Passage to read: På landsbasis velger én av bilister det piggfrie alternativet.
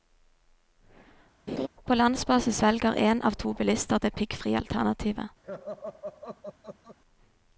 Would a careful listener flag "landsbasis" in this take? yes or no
no